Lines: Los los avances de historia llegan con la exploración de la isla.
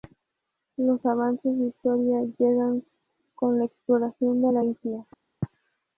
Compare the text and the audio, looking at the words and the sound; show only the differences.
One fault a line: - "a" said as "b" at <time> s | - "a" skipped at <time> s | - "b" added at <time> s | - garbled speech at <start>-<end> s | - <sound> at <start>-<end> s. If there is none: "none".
- "los" skipped at 1.1 s